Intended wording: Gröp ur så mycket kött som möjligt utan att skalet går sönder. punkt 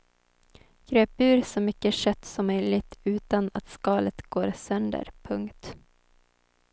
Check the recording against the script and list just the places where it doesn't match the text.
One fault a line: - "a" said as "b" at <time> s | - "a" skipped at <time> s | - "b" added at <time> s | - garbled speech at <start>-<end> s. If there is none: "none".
none